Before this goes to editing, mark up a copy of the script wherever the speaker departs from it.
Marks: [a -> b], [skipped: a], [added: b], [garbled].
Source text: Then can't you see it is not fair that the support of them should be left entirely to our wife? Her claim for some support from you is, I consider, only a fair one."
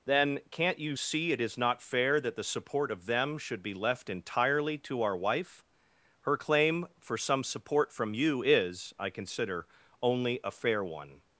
Then can't you see it is not fair that the support of them should be left entirely to our wife? Her claim for some support from you is, I consider, only a fair one."